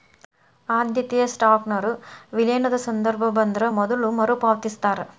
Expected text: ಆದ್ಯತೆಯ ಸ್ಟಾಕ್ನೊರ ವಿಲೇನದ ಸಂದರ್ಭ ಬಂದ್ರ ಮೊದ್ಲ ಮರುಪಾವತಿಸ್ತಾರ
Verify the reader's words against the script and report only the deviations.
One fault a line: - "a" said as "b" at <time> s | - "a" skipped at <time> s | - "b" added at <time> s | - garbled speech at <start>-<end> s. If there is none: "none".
none